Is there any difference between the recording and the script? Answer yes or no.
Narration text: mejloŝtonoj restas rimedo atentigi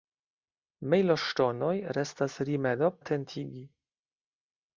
no